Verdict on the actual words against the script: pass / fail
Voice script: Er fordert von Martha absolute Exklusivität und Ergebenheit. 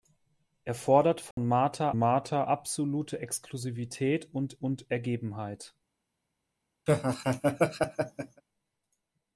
fail